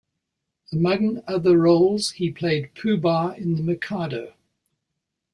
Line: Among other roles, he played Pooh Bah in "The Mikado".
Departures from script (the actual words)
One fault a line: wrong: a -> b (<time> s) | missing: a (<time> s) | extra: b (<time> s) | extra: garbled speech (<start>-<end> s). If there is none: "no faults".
no faults